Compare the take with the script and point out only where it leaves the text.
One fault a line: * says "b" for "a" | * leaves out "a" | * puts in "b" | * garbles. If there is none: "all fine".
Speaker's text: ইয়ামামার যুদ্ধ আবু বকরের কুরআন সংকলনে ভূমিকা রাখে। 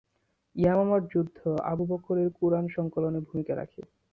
all fine